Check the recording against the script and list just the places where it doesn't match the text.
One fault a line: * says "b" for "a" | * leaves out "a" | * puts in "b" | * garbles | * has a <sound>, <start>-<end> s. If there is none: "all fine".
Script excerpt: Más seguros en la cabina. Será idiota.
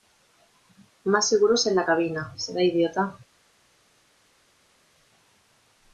all fine